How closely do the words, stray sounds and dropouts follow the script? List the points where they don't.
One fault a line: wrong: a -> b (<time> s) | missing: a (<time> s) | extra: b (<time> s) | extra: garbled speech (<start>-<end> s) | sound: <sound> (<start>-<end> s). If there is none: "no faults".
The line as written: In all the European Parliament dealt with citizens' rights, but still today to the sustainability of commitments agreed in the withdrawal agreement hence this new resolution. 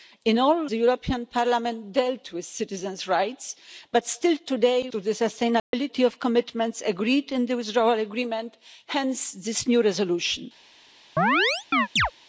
sound: dropout (5.6-5.7 s)
sound: chirp (11.2-12.1 s)